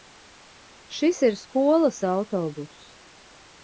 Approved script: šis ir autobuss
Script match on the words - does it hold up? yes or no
no